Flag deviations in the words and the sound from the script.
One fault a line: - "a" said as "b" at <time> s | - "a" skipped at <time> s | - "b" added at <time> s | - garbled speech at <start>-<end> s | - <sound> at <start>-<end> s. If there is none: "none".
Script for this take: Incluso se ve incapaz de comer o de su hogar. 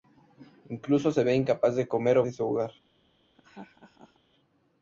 - laugh at 3.3-4.2 s